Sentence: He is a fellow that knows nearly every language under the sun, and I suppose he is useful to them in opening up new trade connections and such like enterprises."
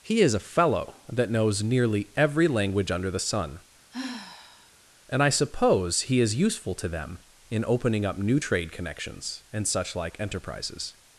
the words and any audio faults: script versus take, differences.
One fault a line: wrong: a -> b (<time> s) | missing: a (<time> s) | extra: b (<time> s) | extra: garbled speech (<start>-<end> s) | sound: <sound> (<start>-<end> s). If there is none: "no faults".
sound: sigh (3.9-4.7 s)